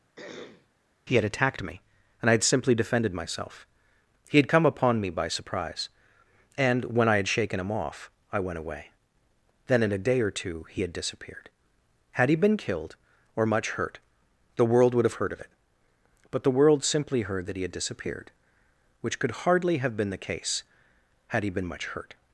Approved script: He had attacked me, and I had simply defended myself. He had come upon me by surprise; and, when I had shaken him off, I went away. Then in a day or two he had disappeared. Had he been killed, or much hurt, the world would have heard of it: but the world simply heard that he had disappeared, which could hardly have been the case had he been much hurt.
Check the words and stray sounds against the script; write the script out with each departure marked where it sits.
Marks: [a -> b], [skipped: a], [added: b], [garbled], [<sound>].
[throat clearing] He had attacked me, and I had simply defended myself. He had come upon me by surprise; and, when I had shaken him off, I went away. Then in a day or two he had disappeared. Had he been killed, or much hurt, the world would have heard of it: but the world simply heard that he had disappeared, which could hardly have been the case had he been much hurt.